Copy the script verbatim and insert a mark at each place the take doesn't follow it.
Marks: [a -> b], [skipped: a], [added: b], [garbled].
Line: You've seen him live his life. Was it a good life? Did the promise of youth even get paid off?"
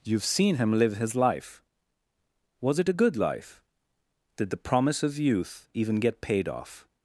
You've seen him live his life. Was it a good life? Did the promise of youth even get paid off?"